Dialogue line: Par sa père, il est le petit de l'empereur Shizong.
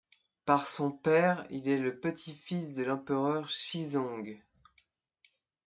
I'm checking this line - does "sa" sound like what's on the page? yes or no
no